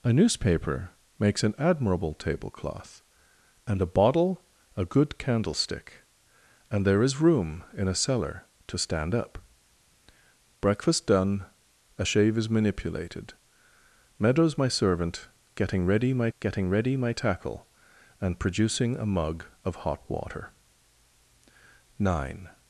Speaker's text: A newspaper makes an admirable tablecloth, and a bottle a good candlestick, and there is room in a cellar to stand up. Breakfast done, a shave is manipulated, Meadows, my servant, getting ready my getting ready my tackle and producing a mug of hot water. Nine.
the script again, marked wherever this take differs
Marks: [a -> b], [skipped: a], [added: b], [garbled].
A newspaper makes an admirable tablecloth, and a bottle a good candlestick, and there is room in a cellar to stand up. Breakfast done, a shave is manipulated, Meadows, my servant, getting ready my getting ready my tackle and producing a mug of hot water. Nine.